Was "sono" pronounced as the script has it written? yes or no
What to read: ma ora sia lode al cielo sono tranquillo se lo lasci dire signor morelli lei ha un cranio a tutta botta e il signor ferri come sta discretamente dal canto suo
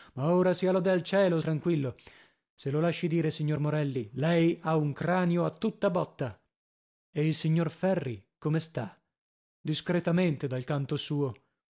no